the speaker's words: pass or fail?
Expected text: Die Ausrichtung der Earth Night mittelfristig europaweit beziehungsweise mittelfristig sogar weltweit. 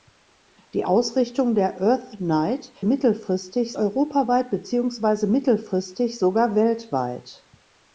pass